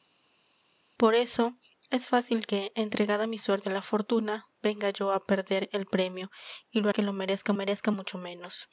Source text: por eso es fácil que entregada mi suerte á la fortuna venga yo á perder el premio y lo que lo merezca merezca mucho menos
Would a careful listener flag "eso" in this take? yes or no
no